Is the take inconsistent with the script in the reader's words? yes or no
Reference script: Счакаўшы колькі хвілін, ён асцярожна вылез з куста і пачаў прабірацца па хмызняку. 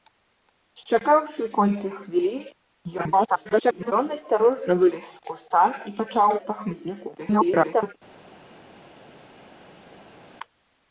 yes